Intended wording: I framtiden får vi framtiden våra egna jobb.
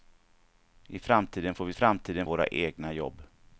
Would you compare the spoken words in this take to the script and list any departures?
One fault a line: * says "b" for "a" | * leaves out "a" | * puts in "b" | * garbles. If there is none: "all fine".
all fine